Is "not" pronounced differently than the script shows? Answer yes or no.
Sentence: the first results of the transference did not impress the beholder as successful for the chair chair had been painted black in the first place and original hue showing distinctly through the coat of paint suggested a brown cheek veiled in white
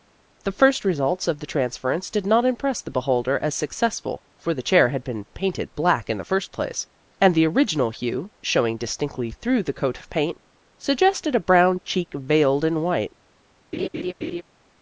no